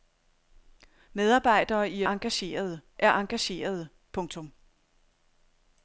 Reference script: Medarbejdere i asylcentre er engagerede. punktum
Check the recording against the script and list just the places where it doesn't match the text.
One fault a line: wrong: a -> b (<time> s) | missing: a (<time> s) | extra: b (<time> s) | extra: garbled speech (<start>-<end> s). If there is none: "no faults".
wrong: asylcentre -> engagerede (2.0 s)